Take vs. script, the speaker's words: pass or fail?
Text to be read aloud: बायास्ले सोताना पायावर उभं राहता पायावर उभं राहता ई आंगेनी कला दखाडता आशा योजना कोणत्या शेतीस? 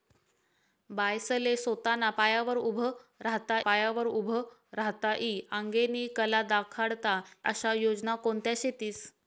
pass